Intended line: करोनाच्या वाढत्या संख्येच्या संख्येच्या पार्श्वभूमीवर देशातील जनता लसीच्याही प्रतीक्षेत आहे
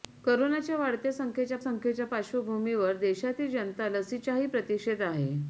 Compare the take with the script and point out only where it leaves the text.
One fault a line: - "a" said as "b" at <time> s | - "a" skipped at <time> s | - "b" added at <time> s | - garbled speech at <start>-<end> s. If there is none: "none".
none